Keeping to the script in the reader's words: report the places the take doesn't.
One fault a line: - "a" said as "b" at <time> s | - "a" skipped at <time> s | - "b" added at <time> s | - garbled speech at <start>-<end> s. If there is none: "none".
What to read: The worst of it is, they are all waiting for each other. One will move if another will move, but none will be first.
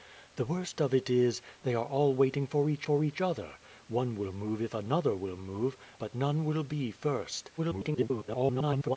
- "for each" added at 2.8 s
- garbled speech at 7.6-9.0 s